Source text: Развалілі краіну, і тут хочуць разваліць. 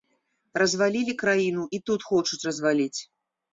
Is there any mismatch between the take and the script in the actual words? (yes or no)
no